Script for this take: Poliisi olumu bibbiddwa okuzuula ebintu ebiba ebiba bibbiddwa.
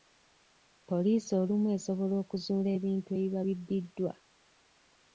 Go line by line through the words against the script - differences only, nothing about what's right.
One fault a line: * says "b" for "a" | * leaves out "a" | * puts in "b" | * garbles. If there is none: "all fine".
* says "esobola" for "bibbiddwa"
* leaves out "ebiba"